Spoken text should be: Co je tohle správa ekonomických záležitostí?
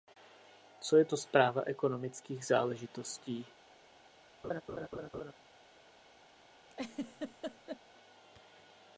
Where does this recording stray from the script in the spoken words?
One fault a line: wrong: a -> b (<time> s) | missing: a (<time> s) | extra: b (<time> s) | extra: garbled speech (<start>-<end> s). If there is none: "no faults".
wrong: tohle -> to (1.0 s)